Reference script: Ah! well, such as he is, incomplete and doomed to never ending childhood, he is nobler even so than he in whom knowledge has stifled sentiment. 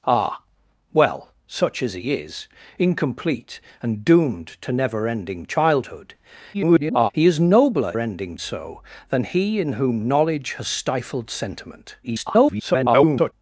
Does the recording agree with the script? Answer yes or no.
no